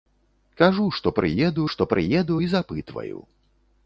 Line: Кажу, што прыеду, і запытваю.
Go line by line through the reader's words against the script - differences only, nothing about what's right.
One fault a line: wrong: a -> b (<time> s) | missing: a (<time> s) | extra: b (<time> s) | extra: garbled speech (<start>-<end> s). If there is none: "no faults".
extra: што прыеду (1.7 s)